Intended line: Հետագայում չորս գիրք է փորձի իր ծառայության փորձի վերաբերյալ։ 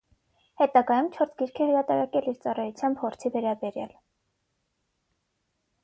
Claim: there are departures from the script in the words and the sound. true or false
true